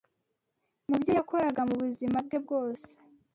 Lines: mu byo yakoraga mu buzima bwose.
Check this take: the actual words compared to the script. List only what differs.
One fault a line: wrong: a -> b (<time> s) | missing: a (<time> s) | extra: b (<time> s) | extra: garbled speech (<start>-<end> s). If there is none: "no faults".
extra: bwe (2.3 s)